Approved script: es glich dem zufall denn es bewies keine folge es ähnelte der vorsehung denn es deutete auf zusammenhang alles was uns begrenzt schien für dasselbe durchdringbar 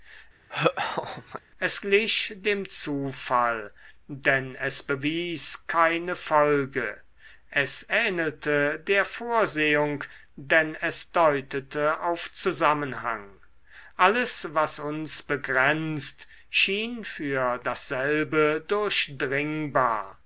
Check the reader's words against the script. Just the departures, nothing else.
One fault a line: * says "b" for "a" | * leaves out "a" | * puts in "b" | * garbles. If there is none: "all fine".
all fine